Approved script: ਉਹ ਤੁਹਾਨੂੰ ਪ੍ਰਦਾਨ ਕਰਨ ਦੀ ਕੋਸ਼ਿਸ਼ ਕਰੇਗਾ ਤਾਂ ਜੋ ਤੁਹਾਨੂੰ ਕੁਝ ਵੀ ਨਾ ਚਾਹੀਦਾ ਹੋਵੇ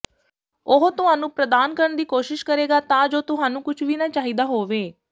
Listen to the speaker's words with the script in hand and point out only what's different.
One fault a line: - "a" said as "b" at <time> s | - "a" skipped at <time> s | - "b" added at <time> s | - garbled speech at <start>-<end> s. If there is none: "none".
none